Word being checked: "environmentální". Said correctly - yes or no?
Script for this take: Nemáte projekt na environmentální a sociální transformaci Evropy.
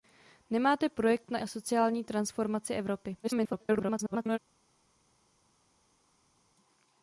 no